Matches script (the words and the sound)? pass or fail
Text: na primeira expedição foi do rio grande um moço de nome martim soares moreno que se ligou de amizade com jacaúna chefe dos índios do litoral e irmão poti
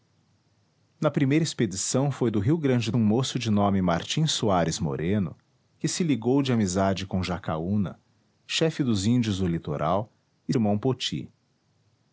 pass